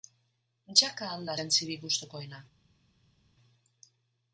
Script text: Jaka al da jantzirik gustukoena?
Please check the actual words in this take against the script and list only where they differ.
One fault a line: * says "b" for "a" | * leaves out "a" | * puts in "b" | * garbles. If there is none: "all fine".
all fine